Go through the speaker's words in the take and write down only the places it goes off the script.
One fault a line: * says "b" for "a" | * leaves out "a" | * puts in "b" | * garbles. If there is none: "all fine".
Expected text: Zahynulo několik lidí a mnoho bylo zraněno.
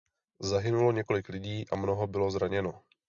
all fine